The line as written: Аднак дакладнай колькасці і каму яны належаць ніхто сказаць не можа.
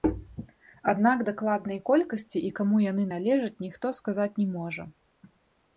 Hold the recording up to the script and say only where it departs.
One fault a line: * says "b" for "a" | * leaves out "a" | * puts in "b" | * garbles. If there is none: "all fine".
all fine